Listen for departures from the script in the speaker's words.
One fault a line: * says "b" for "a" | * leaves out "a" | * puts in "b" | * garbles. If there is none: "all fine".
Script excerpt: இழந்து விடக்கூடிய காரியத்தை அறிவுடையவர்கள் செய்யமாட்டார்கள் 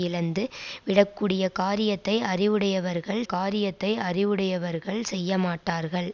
* puts in "காரியத்தை அறிவுடையவர்கள்"